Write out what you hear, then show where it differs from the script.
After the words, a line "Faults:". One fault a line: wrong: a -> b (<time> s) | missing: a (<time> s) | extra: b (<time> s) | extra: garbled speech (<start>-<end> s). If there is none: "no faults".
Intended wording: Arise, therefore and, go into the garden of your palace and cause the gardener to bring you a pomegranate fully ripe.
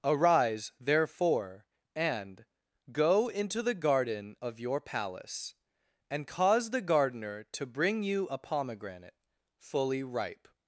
Arise, therefore and, go into the garden of your palace and cause the gardener to bring you a pomegranate fully ripe.
Faults:
no faults